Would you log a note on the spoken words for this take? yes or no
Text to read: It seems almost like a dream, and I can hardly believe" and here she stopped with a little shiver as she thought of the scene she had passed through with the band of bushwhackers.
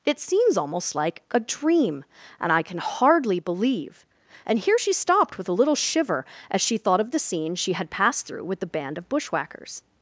no